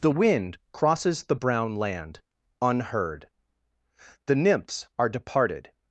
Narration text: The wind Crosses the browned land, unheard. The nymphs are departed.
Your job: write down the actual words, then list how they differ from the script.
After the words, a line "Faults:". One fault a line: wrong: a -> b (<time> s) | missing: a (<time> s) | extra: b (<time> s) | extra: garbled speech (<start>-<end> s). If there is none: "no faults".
The wind Crosses the brown land, unheard. The nymphs are departed.
Faults:
wrong: browned -> brown (1.3 s)